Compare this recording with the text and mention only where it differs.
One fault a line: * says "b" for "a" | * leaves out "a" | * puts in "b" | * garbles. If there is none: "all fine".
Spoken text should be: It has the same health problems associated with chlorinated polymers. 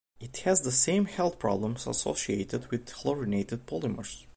all fine